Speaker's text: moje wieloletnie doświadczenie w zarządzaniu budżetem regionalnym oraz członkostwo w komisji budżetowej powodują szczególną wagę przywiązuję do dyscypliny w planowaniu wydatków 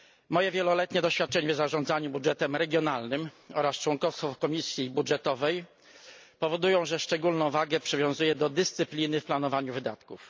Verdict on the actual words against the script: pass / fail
fail